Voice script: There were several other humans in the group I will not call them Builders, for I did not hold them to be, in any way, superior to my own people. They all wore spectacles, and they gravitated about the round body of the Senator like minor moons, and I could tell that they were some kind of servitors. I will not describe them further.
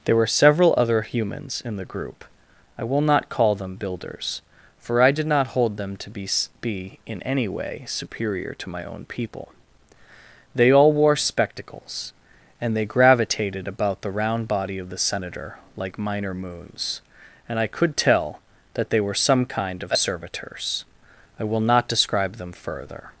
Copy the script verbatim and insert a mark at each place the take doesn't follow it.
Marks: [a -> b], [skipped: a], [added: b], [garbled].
There were several other humans in the group I will not call them Builders, for I did not hold them to be, [added: be] in any way, superior to my own people. They all wore spectacles, and they gravitated about the round body of the Senator like minor moons, and I could tell that they were some kind of servitors. I will not describe them further.